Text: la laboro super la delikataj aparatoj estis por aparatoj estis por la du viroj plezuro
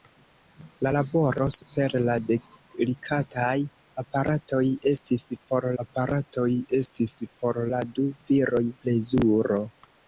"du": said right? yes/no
yes